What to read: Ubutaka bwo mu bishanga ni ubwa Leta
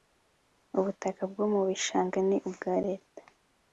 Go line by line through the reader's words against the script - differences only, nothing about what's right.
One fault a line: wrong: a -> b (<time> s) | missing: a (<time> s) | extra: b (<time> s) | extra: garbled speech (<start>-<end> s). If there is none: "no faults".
no faults